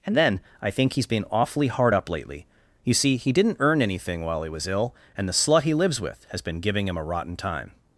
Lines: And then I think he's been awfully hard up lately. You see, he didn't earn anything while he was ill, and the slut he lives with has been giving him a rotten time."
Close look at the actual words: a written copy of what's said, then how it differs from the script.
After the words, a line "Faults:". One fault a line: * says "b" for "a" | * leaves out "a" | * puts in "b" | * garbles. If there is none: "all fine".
And then I think he's been awfully hard up lately. You see, he didn't earn anything while he was ill, and the slut he lives with has been giving him a rotten time."
Faults:
all fine